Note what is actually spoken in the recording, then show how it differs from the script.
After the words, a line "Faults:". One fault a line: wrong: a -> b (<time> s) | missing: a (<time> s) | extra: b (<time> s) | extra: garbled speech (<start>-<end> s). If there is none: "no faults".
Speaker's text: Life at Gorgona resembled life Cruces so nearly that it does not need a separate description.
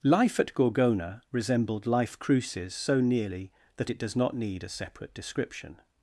Life at Gorgona resembled life Cruces so nearly that it does not need a separate description.
Faults:
no faults